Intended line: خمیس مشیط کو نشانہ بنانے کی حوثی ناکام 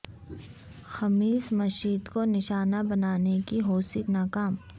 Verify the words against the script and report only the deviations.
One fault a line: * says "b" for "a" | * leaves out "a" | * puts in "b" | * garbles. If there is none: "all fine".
all fine